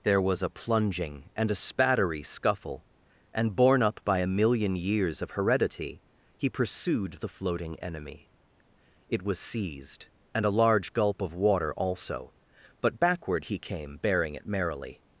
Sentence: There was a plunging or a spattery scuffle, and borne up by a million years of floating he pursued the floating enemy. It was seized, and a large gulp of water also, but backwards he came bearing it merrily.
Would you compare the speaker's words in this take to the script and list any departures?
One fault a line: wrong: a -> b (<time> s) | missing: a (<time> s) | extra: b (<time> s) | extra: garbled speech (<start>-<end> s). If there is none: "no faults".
wrong: or -> and (1.4 s)
wrong: floating -> heredity (5.3 s)
wrong: backwards -> backward (13.0 s)